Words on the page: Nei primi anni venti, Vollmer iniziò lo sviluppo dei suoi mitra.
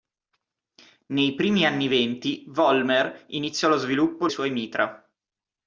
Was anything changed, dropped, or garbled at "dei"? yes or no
yes